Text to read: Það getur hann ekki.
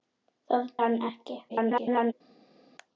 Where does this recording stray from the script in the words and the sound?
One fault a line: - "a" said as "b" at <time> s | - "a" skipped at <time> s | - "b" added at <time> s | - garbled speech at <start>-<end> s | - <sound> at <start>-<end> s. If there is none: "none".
- "getur" skipped at 0.7 s
- garbled speech at 1.5-2.1 s